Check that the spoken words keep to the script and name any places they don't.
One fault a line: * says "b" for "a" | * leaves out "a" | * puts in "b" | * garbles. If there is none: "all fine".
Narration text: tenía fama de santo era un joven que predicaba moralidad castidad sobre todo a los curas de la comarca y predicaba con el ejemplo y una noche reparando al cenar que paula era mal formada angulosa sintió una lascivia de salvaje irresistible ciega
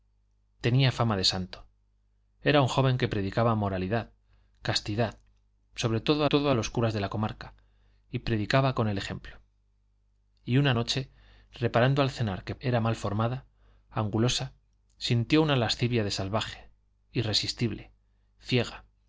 * puts in "todo"
* leaves out "paula"